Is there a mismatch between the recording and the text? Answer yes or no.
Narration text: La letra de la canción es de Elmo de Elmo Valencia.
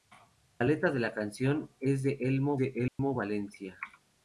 no